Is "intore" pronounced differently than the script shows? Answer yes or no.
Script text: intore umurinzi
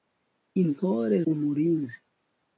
no